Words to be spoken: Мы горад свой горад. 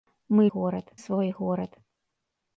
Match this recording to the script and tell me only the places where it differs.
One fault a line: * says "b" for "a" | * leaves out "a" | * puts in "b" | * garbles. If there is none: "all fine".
all fine